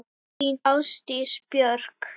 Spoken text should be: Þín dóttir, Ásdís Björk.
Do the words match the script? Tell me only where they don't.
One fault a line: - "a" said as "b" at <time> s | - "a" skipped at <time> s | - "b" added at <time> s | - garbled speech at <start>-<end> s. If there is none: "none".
- "dóttir" skipped at 0.6 s